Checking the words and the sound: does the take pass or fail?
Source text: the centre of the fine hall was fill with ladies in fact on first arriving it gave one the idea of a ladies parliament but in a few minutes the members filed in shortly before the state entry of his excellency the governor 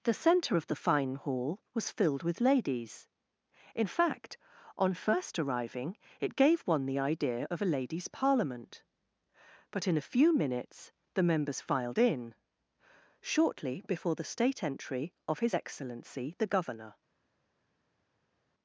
fail